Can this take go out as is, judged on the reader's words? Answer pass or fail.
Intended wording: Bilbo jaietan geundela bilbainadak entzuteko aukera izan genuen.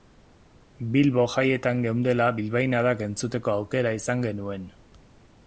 pass